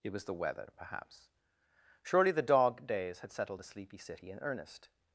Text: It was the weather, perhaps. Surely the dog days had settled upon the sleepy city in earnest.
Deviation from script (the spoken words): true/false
true